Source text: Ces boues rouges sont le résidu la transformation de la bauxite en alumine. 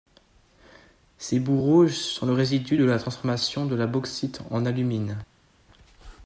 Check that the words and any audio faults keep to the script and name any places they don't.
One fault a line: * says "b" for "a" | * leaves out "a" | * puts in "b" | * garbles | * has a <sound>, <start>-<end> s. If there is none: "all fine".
* puts in "de"